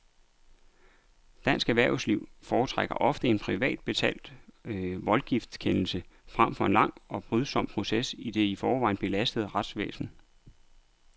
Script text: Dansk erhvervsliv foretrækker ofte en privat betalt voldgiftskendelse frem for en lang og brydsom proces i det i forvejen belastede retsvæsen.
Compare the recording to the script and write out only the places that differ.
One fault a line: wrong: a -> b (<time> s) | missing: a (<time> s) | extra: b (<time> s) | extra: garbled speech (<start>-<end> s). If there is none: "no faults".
no faults